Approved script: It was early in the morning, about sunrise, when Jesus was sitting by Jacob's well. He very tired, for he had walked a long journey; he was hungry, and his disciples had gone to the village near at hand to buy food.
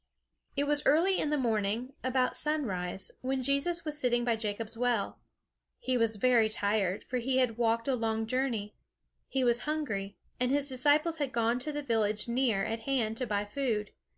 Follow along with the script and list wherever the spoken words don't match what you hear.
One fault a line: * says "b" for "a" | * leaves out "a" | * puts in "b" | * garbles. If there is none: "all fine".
* puts in "was"